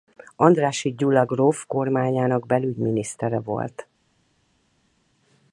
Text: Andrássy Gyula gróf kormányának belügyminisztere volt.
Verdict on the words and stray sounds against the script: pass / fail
pass